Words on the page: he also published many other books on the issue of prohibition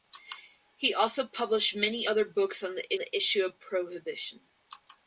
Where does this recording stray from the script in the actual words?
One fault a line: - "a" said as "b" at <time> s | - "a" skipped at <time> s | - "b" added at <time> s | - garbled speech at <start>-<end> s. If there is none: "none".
- "the" added at 3.0 s